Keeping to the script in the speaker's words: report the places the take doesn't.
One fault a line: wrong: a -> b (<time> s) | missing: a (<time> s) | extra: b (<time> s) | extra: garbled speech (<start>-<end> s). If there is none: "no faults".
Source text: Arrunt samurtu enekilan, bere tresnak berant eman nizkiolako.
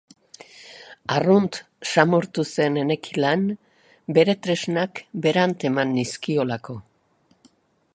extra: zen (2.5 s)